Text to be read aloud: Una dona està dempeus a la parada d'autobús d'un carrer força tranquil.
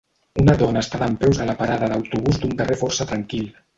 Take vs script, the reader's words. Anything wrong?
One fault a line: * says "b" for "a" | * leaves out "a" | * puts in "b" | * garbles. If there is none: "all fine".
all fine